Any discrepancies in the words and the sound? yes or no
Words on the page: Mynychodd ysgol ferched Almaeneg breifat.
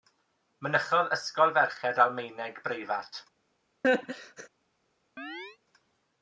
yes